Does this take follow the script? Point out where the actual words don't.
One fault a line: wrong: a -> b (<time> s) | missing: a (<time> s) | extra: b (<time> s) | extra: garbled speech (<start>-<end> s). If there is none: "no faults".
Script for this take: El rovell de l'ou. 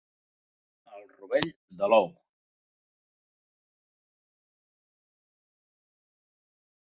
no faults